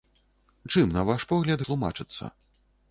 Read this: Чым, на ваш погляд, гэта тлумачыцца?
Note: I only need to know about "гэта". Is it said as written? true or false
false